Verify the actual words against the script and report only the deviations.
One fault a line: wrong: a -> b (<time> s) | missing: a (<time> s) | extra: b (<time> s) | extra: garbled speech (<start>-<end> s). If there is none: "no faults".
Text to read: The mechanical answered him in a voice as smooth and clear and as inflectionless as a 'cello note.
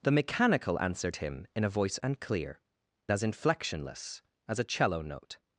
missing: as smooth (2.0 s)
missing: and (2.6 s)